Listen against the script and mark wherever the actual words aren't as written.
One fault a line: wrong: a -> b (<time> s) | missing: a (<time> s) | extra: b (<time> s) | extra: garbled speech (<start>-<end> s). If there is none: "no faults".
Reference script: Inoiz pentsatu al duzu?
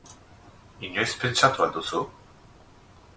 no faults